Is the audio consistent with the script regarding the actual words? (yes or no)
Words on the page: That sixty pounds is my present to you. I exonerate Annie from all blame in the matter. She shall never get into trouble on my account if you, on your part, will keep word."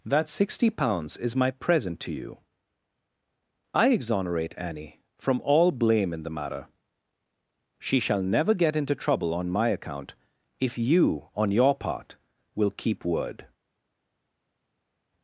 yes